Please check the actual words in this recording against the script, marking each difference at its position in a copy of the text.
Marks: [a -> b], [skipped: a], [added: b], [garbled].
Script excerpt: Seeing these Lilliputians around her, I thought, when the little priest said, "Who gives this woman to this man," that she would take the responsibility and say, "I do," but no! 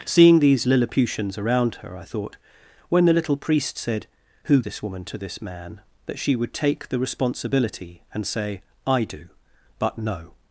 Seeing these Lilliputians around her, I thought, when the little priest said, "Who [skipped: gives] this woman to this man," that she would take the responsibility and say, "I do," but no!